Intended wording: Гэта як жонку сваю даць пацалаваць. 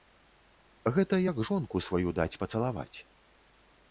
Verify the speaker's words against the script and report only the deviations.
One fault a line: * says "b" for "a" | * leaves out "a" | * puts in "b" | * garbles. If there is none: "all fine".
all fine